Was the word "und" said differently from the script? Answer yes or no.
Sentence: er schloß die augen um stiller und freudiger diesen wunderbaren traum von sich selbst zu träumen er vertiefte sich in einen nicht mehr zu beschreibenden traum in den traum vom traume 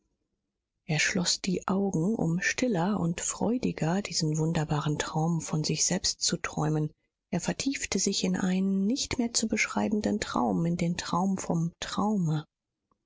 no